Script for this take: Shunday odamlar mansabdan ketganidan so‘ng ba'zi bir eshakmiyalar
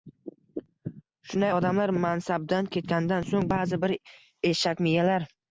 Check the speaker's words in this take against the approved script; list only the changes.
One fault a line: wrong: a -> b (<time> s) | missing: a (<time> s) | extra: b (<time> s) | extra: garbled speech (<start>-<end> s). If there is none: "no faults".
no faults